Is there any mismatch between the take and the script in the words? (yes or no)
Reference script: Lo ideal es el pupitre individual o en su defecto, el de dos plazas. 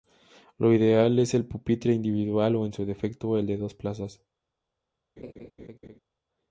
no